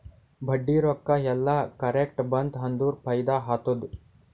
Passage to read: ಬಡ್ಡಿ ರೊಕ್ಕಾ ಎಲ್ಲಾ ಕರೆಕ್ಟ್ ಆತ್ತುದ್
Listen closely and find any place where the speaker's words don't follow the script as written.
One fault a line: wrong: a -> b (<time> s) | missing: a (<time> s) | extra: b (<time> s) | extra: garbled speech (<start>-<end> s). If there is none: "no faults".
extra: ಬಂತ್ ಅಂದುರ್ ಫೈದಾ (2.3 s)